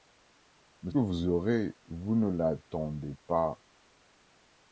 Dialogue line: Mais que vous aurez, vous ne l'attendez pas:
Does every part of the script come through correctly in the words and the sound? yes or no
yes